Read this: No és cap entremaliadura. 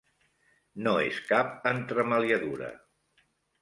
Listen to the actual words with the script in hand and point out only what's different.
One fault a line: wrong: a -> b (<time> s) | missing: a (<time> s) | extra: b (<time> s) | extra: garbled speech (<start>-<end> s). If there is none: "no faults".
no faults